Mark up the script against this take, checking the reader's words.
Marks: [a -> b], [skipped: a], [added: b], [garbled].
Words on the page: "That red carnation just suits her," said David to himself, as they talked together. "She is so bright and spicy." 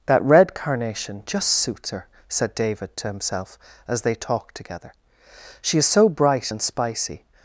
"That red carnation just suits her," said David to himself, as they talked together. "She is so bright and spicy."